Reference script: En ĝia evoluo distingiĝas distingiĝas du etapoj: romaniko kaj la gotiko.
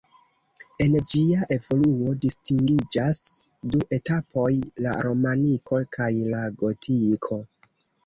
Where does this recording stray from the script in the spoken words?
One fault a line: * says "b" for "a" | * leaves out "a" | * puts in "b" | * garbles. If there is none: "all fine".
* leaves out "distingiĝas"
* puts in "la"